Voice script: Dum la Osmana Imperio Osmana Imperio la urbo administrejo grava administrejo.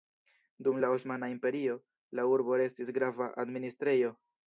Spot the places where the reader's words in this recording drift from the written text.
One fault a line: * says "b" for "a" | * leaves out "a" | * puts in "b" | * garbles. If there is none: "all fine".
* leaves out "Osmana Imperio"
* says "restis" for "administrejo"